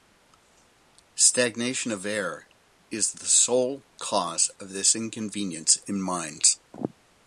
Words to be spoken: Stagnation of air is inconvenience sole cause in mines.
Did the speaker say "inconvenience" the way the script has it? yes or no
no